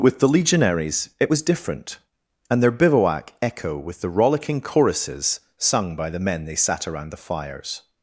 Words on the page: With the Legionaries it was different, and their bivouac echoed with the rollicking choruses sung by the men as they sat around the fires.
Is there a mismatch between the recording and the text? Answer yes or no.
yes